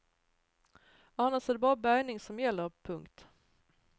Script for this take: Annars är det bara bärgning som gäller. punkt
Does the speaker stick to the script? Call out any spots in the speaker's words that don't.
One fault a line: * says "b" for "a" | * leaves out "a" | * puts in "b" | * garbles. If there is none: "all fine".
all fine